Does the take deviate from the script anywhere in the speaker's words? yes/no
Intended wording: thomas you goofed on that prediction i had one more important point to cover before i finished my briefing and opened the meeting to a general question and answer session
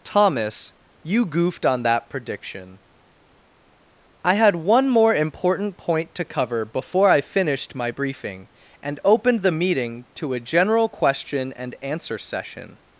no